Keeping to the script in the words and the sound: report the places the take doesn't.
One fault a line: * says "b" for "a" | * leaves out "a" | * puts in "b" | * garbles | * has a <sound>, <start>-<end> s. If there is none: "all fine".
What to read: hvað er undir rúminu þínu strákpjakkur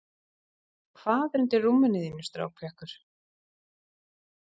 all fine